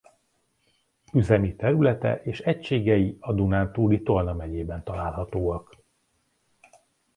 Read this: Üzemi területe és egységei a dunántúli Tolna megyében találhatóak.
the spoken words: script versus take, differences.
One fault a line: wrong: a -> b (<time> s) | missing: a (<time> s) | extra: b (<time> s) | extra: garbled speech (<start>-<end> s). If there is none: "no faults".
no faults